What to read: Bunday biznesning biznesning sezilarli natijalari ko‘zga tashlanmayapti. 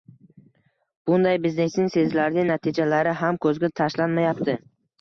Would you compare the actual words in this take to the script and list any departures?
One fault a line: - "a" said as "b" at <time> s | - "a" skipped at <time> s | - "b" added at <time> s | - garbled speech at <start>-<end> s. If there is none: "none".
- "biznesning" skipped at 1.9 s
- "ham" added at 3.3 s